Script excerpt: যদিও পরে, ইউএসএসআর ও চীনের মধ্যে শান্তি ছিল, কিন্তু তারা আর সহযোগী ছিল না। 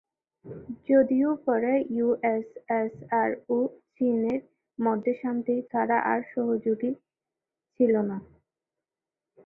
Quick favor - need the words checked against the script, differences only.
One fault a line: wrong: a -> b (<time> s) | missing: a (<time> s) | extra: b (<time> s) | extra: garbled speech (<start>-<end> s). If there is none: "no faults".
missing: ছিল কিন্তু (5.5 s)